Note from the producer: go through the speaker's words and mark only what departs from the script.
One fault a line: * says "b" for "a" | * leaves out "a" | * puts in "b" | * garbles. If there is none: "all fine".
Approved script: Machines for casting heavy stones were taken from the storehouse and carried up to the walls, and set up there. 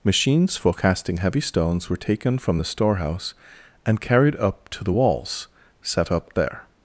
* leaves out "and"